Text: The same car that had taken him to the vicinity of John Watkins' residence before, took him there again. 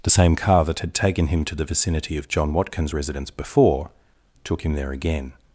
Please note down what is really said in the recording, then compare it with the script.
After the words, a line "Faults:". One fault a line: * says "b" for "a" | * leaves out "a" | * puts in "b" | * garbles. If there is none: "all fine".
The same car that had taken him to the vicinity of John Watkins' residence before, took him there again.
Faults:
all fine